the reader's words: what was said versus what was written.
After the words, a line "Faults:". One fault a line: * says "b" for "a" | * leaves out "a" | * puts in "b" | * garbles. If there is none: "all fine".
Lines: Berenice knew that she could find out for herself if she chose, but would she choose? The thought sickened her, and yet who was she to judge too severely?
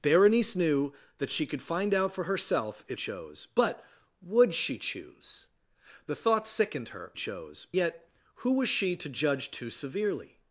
Berenice knew that she could find out for herself if chose, but would she choose? The thought sickened her, chose yet who was she to judge too severely?
Faults:
* leaves out "she"
* says "chose" for "and"